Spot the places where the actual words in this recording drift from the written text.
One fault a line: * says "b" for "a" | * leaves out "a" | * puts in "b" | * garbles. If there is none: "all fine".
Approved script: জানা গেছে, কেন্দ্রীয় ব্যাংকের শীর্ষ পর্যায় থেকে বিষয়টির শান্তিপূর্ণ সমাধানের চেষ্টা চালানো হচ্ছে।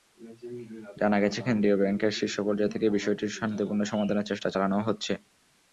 all fine